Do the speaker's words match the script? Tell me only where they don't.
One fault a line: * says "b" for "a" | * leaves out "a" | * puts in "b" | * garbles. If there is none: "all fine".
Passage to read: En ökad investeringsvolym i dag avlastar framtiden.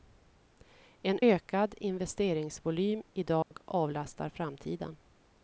all fine